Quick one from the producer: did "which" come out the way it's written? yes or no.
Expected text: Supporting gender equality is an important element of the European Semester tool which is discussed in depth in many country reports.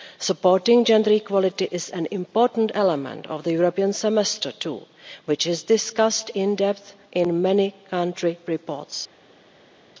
yes